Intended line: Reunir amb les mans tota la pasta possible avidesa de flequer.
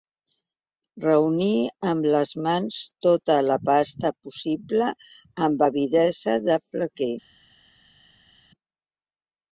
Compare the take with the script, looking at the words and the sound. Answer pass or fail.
fail